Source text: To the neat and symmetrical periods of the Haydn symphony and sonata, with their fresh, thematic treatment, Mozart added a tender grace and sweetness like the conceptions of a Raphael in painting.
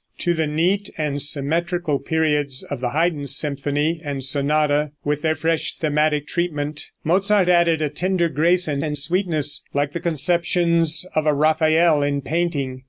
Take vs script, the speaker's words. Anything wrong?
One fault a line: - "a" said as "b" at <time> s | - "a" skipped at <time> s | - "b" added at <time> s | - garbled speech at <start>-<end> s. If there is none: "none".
- "and" added at 8.8 s